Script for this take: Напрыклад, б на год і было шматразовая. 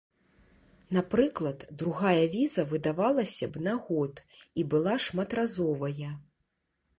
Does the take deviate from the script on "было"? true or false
true